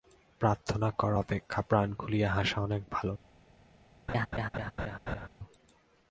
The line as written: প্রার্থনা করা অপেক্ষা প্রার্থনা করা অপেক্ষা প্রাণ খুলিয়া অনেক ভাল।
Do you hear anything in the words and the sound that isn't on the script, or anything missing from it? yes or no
yes